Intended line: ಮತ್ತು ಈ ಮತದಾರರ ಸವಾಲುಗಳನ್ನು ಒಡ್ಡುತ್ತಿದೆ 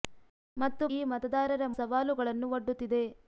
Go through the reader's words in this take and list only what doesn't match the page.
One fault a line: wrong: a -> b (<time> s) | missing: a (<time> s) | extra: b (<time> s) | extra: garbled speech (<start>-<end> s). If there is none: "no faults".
no faults